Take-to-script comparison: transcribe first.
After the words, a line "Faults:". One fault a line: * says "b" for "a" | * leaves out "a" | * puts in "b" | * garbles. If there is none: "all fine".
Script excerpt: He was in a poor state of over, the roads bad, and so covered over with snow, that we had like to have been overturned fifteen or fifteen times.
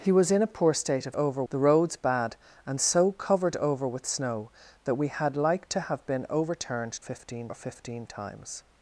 He was in a poor state of over, the roads bad, and so covered over with snow, that we had like to have been overturned fifteen or fifteen times.
Faults:
all fine